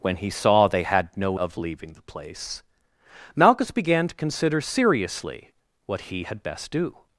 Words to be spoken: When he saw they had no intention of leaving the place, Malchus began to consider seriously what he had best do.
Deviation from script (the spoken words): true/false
true